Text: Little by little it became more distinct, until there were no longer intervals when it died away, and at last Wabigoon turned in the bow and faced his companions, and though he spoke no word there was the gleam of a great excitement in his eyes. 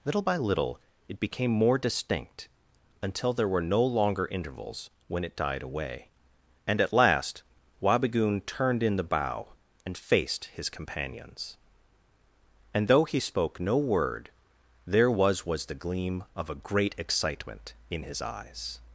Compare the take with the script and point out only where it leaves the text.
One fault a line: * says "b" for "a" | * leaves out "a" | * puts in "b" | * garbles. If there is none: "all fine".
* puts in "was"